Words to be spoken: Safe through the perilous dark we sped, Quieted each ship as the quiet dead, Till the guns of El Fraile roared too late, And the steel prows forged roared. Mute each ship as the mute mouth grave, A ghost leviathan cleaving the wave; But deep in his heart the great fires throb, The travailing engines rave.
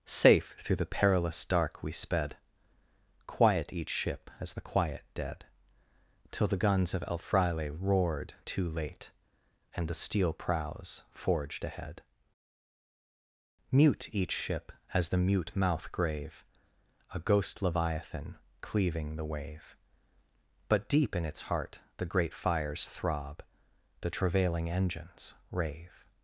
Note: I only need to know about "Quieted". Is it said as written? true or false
false